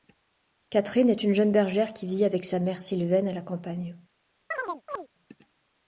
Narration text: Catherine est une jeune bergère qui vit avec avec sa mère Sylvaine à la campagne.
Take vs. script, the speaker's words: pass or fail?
fail